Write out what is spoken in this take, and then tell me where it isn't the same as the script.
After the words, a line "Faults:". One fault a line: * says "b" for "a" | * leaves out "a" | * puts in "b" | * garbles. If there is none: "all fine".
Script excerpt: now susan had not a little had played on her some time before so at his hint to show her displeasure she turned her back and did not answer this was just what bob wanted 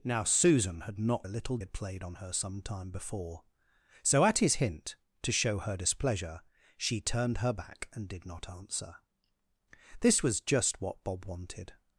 now susan had not a little had played on her some time before so at his hint to show her displeasure she turned her back and did not answer this was just what bob wanted
Faults:
all fine